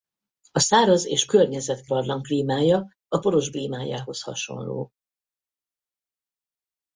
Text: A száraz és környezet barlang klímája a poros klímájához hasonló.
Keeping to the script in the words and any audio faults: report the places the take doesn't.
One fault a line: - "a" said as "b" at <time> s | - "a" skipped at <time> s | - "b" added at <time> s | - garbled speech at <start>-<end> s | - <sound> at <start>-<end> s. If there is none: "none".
none